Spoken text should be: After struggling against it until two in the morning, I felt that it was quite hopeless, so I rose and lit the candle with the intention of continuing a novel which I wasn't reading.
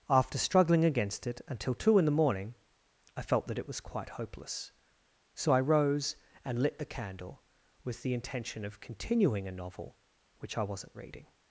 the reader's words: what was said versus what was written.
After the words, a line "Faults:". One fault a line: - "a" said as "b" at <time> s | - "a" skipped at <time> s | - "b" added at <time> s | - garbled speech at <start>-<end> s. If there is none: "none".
After struggling against it until two in the morning, I felt that it was quite hopeless, so I rose and lit the candle with the intention of continuing a novel which I wasn't reading.
Faults:
none